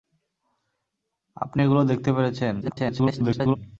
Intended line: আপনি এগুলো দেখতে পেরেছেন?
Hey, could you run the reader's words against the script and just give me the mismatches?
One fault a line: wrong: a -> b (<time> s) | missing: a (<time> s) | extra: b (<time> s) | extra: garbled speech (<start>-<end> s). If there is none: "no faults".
extra: garbled speech (2.6-3.6 s)